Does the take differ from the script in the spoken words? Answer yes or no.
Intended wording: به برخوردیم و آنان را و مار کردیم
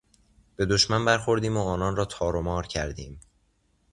yes